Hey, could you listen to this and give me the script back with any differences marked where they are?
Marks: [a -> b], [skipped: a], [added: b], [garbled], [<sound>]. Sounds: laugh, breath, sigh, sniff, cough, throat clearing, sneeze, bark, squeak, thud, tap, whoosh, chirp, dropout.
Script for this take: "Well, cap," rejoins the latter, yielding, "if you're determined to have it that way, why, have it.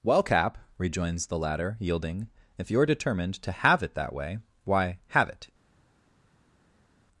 "Well, cap," rejoins the latter, yielding, "if you're determined to have it that way, why, have it.